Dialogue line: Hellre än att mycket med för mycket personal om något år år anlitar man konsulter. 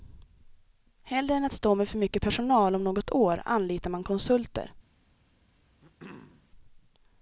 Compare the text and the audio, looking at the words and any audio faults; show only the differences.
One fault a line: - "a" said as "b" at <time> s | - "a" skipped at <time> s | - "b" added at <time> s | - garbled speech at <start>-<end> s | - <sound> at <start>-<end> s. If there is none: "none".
- "mycket" said as "stå" at 1.5 s
- "år" skipped at 3.4 s
- throat clearing at 5.8-6.5 s